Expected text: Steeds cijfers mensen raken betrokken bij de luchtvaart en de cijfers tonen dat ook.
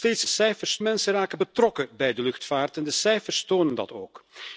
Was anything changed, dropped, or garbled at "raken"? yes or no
no